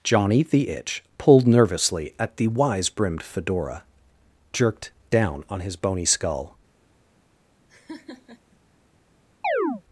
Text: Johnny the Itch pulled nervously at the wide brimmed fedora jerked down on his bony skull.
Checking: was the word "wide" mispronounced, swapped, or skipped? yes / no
yes